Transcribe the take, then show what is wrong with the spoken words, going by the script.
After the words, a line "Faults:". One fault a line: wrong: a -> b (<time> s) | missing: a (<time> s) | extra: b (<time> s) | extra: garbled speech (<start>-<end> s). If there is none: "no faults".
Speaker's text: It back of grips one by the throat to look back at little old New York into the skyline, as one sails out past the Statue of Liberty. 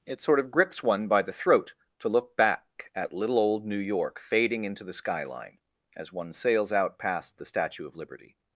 It sort of grips one by the throat to look back at little old New York fading into the skyline, as one sails out past the Statue of Liberty.
Faults:
wrong: back -> sort (0.2 s)
extra: fading (4.2 s)